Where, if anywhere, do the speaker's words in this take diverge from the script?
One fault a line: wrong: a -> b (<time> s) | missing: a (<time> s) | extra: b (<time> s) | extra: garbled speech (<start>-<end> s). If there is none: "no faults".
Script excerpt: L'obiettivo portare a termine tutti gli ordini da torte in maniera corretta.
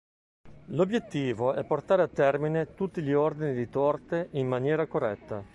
extra: è (1.5 s)
wrong: da -> di (3.5 s)